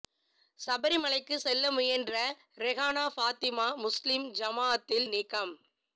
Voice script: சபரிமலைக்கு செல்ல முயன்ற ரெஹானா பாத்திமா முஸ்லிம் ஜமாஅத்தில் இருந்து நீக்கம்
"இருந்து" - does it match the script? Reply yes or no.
no